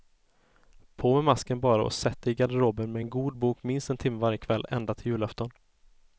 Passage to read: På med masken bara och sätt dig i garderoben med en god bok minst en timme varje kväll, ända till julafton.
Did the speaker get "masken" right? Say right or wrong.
right